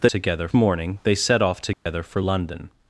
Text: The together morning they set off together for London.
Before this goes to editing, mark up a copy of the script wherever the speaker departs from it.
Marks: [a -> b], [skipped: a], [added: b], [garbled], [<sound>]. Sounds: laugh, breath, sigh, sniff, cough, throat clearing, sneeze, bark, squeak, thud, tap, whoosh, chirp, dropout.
The together morning they set off together [dropout] for London.